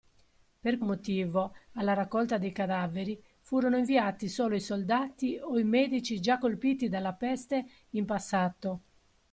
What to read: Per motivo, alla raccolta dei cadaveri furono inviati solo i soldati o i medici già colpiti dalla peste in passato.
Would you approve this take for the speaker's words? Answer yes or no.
yes